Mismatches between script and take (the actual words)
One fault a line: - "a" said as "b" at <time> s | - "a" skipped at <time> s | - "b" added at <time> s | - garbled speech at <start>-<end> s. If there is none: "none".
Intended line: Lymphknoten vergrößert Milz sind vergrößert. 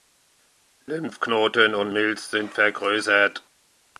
- "vergrößert" said as "und" at 1.8 s